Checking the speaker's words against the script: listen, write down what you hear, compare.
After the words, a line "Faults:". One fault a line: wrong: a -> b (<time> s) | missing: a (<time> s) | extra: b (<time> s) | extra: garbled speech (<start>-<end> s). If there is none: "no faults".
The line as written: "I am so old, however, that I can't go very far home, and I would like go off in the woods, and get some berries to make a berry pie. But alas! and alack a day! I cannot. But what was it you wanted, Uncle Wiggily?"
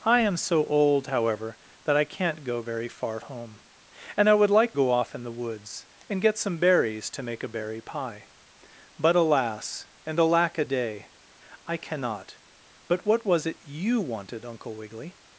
"I am so old, however, that I can't go very far home, and I would like go off in the woods, and get some berries to make a berry pie. But alas! and alack a day! I cannot. But what was it you wanted, Uncle Wiggily?"
Faults:
no faults